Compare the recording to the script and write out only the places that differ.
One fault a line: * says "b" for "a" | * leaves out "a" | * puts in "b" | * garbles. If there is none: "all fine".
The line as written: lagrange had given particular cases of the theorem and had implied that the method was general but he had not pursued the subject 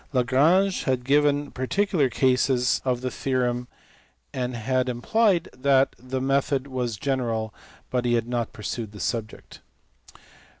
all fine